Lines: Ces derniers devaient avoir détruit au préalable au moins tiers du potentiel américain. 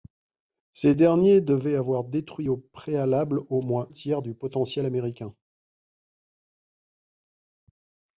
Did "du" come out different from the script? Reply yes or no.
no